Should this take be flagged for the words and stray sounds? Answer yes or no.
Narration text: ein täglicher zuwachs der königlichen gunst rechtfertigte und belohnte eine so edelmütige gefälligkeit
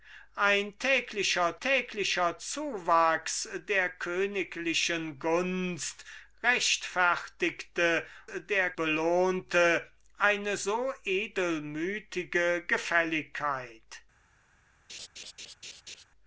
yes